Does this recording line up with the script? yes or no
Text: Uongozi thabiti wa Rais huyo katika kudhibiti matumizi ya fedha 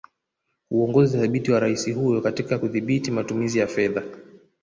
yes